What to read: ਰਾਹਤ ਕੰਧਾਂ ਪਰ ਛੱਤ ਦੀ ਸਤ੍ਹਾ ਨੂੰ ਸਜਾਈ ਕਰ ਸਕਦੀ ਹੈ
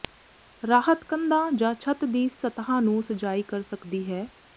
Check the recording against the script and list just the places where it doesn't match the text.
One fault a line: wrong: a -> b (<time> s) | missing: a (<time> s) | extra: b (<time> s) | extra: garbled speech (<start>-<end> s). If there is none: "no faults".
wrong: ਪਰ -> ਜਾਂ (1.5 s)